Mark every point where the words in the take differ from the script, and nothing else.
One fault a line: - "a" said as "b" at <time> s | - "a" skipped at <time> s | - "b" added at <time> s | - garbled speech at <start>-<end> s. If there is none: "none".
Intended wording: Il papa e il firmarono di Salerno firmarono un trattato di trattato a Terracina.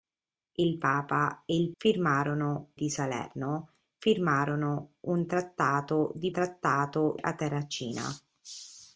none